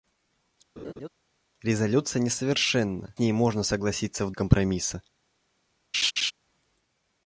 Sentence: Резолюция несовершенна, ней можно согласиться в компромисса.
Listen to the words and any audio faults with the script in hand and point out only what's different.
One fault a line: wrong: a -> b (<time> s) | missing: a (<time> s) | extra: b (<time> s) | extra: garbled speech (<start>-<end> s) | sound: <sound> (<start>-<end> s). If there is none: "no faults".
sound: laugh (0.8-1.1 s)
sound: laugh (5.9-6.3 s)